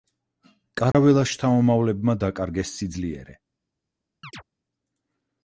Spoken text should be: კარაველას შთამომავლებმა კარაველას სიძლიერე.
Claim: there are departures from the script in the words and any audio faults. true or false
true